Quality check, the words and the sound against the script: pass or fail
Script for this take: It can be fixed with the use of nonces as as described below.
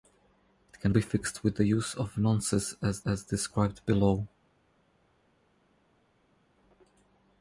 pass